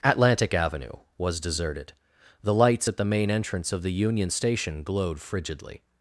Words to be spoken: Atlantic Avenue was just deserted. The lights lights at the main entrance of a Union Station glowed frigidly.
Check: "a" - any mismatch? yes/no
yes